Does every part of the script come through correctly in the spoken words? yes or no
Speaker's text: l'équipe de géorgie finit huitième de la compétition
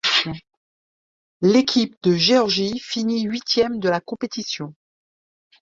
yes